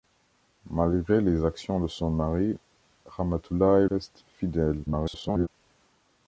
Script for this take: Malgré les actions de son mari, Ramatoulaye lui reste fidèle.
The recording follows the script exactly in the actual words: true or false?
false